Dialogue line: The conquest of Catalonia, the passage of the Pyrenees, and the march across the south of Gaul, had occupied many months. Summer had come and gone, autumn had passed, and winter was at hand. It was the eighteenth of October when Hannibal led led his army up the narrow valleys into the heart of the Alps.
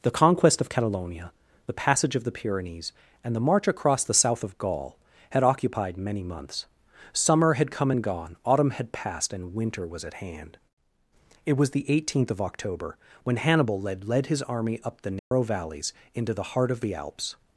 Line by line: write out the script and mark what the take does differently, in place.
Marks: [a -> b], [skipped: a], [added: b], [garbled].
The conquest of Catalonia, the passage of the Pyrenees, and the march across the south of Gaul, had occupied many months. Summer had come and gone, autumn had passed, and winter was at hand. It was the eighteenth of October when Hannibal led led his army up the narrow valleys into the heart of the Alps.